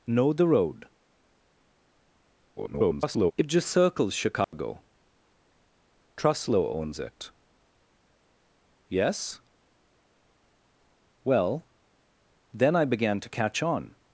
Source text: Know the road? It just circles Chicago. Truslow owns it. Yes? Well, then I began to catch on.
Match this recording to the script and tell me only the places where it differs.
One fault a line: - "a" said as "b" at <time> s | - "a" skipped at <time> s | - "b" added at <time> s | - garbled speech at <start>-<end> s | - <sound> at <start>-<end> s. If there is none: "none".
- garbled speech at 2.6-3.3 s
- dropout at 4.4-4.5 s